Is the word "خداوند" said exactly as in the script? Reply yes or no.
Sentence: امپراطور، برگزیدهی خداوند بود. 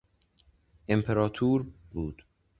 no